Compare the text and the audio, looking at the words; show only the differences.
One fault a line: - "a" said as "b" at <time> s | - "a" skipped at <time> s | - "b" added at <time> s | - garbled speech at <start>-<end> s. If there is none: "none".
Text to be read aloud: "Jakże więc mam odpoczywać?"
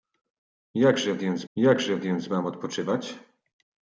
- "jakże więc" added at 1.5 s